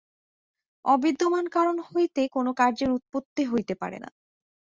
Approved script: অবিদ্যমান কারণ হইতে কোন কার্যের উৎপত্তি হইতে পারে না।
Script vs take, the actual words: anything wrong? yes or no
no